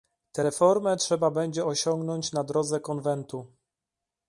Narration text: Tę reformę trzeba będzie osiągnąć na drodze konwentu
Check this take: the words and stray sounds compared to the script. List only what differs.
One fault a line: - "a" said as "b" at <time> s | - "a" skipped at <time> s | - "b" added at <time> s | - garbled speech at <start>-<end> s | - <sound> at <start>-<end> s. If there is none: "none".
none